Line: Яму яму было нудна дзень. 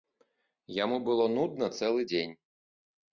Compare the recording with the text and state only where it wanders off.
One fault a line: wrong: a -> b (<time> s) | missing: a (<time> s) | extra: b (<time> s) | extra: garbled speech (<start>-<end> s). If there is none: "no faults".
missing: яму (1.0 s)
extra: цэлы (1.8 s)